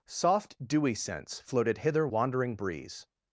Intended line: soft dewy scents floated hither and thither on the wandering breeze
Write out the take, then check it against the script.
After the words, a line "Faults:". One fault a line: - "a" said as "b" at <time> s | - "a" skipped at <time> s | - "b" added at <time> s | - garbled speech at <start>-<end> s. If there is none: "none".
soft dewy scents floated hither wandering breeze
Faults:
- "and thither on the" skipped at 2.1 s